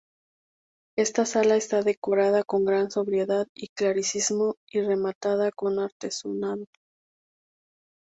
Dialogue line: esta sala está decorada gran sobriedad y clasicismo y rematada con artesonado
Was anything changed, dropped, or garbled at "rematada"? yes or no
no